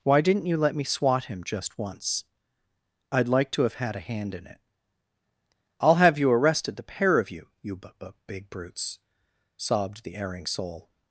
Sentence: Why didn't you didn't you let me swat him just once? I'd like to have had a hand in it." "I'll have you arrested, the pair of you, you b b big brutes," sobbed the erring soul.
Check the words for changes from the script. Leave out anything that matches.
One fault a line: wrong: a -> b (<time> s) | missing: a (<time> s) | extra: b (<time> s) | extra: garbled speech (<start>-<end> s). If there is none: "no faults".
missing: didn't you (0.6 s)